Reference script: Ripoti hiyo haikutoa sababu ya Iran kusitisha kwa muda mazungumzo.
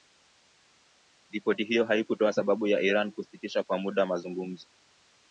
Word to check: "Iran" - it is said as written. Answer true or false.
true